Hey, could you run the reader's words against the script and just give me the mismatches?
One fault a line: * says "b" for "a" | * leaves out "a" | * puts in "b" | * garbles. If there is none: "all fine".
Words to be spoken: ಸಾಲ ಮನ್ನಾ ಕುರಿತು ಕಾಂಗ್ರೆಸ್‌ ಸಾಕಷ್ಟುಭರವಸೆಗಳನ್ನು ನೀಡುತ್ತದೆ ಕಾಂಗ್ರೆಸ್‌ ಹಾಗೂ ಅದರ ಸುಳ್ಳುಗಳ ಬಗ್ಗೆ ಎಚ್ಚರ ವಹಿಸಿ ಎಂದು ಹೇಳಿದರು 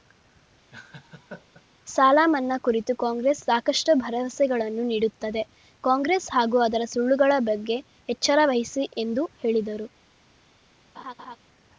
all fine